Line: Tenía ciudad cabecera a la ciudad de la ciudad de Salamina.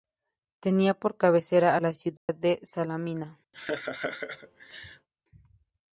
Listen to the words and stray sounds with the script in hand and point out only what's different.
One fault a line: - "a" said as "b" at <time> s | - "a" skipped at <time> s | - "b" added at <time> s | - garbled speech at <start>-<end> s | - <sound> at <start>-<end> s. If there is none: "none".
- "ciudad" said as "por" at 0.9 s
- dropout at 2.2-2.3 s
- "la ciudad de" skipped at 2.6 s
- laugh at 3.5-5.1 s